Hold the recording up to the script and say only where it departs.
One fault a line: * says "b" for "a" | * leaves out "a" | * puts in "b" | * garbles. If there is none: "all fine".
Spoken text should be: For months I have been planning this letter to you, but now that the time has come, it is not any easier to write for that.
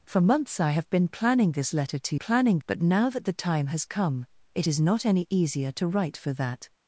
* says "planning" for "you"